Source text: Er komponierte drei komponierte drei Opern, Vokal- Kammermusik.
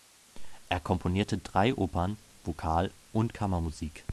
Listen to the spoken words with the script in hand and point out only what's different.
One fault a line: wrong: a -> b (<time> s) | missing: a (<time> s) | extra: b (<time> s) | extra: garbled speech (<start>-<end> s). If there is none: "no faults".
missing: komponierte drei (1.8 s)
extra: und (3.1 s)